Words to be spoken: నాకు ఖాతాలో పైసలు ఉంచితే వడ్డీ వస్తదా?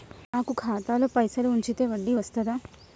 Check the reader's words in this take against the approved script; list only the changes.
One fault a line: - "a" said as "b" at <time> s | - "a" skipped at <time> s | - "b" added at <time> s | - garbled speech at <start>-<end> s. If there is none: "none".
none